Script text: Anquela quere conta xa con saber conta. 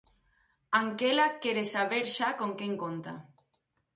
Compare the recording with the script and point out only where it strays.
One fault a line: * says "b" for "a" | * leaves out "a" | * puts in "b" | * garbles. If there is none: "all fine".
* says "saber" for "conta"
* says "quen" for "saber"